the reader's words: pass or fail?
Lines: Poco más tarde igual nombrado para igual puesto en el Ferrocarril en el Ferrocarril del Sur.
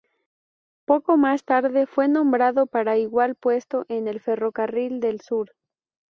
fail